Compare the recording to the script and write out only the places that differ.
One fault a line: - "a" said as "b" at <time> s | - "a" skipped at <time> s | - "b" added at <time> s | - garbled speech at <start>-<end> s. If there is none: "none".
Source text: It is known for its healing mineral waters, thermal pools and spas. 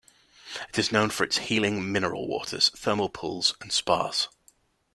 none